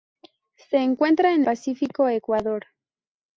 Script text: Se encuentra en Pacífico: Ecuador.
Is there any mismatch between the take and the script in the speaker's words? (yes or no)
no